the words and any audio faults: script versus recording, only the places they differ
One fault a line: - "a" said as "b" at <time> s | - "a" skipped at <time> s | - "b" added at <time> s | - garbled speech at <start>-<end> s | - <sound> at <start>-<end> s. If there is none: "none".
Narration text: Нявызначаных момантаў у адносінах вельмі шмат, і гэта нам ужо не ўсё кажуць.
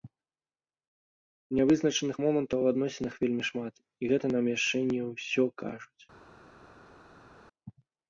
- "ужо" said as "яшчэ" at 4.6 s